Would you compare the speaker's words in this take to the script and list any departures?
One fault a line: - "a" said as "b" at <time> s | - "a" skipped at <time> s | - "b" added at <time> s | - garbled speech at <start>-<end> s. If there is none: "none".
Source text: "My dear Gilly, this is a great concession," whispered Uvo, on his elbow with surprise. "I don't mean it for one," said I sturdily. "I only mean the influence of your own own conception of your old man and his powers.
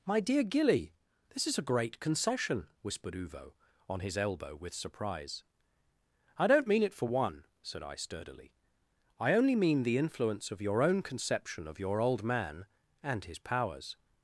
- "own" skipped at 11.0 s